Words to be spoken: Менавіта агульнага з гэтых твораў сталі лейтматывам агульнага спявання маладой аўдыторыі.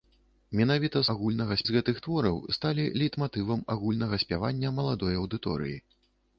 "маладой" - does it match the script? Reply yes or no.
yes